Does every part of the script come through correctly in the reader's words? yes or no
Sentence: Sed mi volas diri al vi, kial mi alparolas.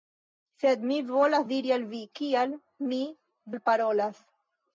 yes